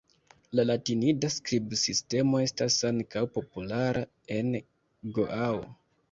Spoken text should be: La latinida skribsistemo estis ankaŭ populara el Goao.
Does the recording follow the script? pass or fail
fail